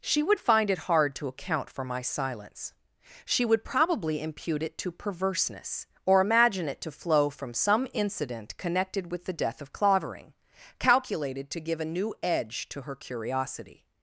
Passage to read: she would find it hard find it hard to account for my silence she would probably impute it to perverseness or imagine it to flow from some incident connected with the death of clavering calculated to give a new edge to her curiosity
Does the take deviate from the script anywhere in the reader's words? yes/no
yes